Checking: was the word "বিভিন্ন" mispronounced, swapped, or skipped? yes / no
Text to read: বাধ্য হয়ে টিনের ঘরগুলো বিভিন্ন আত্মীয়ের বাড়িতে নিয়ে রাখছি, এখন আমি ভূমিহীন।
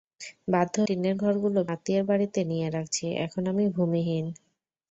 yes